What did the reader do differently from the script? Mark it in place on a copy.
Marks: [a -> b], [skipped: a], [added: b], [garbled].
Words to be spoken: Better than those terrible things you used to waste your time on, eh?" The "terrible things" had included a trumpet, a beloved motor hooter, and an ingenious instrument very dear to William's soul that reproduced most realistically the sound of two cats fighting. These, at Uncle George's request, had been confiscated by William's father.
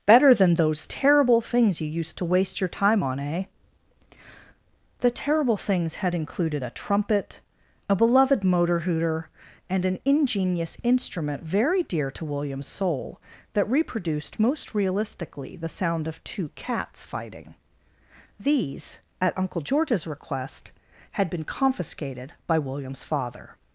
Better than those terrible things you used to waste your time on, eh?" The "terrible things" had included a trumpet, a beloved motor hooter, and an ingenious instrument very dear to William's soul that reproduced most realistically the sound of two cats fighting. These, at Uncle George's request, had been confiscated by William's father.